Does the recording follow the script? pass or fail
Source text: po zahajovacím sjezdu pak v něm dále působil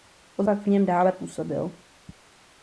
fail